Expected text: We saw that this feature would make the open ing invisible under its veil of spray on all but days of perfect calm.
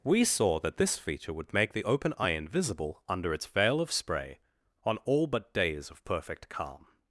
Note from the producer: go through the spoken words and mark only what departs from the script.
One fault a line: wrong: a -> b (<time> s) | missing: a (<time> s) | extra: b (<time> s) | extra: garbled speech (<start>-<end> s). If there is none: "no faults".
wrong: ing -> eye (2.2 s)